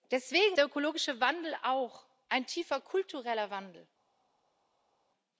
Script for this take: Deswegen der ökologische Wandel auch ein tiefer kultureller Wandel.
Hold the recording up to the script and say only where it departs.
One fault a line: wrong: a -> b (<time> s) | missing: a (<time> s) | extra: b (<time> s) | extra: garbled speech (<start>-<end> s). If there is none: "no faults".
no faults